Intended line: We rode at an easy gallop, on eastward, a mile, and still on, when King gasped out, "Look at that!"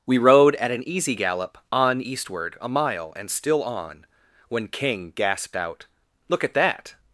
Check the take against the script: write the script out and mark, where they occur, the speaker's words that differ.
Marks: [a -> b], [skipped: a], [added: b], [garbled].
We rode at an easy gallop, on eastward, a mile, and still on, when King gasped out, "Look at that!"